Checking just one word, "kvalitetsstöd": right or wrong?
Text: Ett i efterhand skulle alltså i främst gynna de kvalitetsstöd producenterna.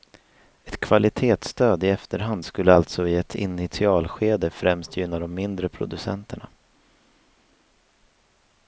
wrong